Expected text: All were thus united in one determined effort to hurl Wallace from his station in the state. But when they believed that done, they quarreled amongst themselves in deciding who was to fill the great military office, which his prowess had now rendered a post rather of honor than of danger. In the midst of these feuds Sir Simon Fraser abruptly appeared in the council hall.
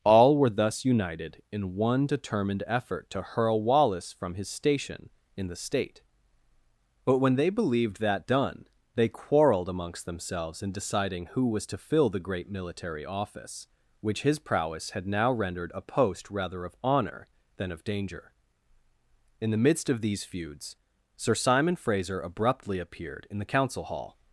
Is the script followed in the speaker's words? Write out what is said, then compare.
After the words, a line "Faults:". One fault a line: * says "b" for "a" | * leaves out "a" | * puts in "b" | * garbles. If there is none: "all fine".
All were thus united in one determined effort to hurl Wallace from his station in the state. But when they believed that done, they quarreled amongst themselves in deciding who was to fill the great military office, which his prowess had now rendered a post rather of honor than of danger. In the midst of these feuds Sir Simon Fraser abruptly appeared in the council hall.
Faults:
all fine